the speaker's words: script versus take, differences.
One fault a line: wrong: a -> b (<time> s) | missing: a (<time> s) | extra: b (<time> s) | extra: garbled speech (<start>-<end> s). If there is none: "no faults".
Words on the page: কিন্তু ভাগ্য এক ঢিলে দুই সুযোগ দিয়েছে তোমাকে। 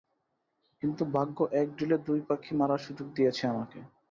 extra: পাখি মারার (2.3 s)
wrong: তোমাকে -> আমাকে (3.5 s)